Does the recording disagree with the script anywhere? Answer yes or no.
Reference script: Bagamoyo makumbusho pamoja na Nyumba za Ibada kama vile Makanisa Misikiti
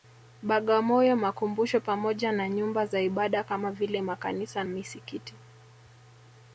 no